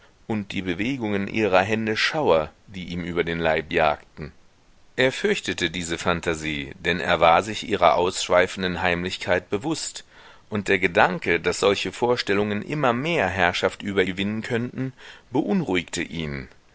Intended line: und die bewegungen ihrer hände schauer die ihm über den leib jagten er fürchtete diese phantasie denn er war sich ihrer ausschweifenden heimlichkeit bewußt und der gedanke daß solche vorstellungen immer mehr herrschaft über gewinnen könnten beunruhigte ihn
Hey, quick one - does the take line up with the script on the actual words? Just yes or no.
yes